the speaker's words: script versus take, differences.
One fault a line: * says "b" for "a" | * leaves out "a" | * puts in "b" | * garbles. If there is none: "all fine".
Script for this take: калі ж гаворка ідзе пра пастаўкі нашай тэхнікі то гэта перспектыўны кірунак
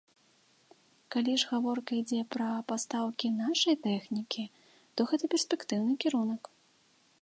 all fine